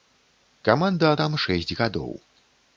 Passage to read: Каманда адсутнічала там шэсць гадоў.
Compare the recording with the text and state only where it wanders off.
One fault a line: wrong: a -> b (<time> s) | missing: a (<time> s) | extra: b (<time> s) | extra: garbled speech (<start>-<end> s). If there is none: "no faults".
missing: адсутнічала (1.1 s)